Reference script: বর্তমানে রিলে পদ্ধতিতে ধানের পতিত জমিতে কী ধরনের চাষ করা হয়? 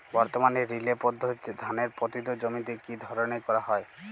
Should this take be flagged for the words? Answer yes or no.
yes